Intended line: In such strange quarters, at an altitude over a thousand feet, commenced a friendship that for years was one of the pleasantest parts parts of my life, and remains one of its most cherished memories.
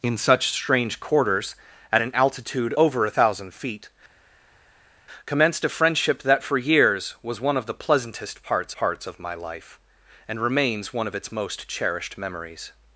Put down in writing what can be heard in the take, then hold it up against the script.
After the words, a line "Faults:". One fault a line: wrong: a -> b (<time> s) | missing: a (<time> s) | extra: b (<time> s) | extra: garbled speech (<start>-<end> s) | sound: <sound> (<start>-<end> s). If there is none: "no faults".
In such strange quarters, at an altitude over a thousand feet, commenced a friendship that for years was one of the pleasantest parts parts of my life, and remains one of its most cherished memories.
Faults:
no faults